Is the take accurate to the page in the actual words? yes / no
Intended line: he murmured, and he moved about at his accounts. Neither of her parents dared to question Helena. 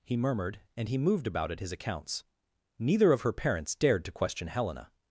yes